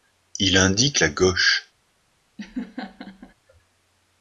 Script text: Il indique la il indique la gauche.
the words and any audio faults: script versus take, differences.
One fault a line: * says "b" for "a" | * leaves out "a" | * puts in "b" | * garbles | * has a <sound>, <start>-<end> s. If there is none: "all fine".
* leaves out "il indique la"
* has a laugh, 2.4-3.3 s